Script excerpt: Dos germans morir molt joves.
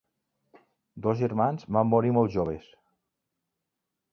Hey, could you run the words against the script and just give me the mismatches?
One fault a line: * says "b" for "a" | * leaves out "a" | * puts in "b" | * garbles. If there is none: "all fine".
* puts in "van"